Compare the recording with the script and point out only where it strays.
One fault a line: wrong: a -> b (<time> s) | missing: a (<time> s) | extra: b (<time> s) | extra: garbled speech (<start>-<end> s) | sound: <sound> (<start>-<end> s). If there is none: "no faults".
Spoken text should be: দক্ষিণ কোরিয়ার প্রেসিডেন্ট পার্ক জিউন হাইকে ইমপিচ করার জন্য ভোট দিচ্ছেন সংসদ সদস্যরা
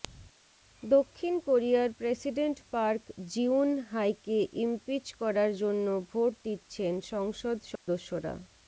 sound: dropout (7.8-7.9 s)